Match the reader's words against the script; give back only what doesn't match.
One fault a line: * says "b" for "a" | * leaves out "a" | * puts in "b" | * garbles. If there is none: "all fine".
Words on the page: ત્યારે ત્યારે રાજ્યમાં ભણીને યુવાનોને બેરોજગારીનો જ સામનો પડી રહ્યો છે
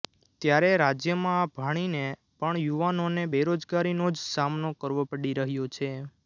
* leaves out "ત્યારે"
* puts in "પણ"
* puts in "કરવો"